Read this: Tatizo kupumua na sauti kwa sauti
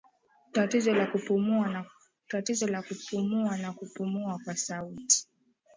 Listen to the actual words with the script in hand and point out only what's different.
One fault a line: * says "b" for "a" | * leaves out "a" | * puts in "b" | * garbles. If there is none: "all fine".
* puts in "la"
* says "kupumua" for "sauti"